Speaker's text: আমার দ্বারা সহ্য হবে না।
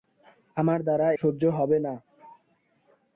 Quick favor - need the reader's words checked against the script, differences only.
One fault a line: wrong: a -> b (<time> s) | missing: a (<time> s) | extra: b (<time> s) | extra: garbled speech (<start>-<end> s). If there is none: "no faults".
no faults